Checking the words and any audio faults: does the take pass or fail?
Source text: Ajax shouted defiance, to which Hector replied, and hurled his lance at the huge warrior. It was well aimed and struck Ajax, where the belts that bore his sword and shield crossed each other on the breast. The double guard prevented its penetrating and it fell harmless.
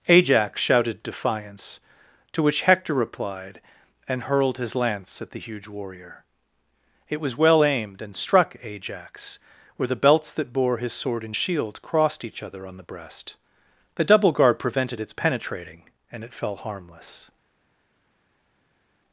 pass